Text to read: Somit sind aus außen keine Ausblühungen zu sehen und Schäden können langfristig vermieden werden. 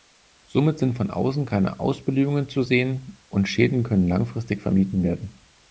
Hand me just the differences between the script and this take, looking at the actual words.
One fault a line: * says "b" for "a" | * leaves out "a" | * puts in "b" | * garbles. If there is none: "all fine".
* says "von" for "aus"